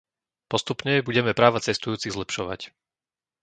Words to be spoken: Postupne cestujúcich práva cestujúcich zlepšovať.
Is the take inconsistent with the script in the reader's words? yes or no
yes